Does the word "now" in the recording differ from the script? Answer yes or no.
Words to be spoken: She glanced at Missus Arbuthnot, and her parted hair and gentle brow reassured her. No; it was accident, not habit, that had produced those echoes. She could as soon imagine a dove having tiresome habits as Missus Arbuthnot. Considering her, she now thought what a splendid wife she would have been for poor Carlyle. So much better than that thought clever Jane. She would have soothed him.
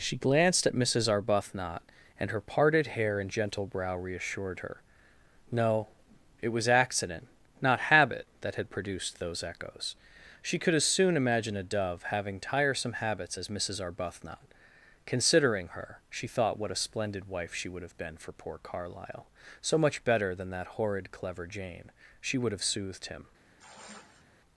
yes